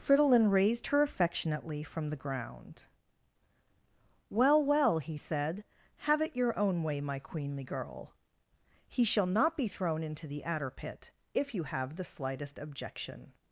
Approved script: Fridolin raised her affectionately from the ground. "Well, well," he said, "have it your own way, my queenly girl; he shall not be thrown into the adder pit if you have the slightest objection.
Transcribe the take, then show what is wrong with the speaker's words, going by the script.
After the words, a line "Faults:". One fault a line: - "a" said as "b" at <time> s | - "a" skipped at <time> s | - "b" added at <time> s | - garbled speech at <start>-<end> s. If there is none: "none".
Fridolin raised her affectionately from the ground. "Well, well," he said, "have it your own way, my queenly girl; he shall not be thrown into the adder pit if you have the slightest objection.
Faults:
none